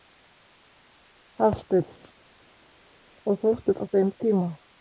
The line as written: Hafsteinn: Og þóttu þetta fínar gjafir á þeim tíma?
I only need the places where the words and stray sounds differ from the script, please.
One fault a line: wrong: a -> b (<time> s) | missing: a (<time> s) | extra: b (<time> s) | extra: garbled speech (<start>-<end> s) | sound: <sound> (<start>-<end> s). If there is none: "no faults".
missing: þetta fínar gjafir (3.8 s)